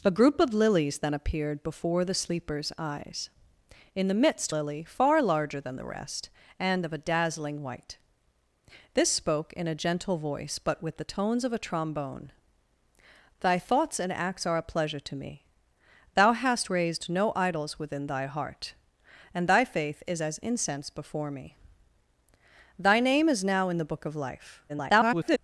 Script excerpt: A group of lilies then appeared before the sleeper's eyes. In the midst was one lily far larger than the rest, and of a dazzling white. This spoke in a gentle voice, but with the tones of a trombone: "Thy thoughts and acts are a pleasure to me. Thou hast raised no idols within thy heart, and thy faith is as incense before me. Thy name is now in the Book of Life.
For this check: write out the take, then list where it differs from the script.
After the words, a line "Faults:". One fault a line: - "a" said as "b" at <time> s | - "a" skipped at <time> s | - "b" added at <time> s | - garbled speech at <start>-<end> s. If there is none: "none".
A group of lilies then appeared before the sleeper's eyes. In the midst lily far larger than the rest, and of a dazzling white. This spoke in a gentle voice, but with the tones of a trombone: "Thy thoughts and acts are a pleasure to me. Thou hast raised no idols within thy heart, and thy faith is as incense before me. Thy name is now in the Book of Life. [garbled]
Faults:
- "was one" skipped at 4.5 s
- garbled speech at 24.7-25.4 s